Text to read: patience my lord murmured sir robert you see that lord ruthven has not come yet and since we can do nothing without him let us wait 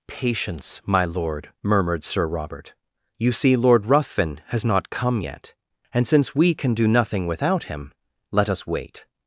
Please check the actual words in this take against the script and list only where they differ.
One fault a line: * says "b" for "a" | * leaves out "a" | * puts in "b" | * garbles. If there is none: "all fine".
* leaves out "that"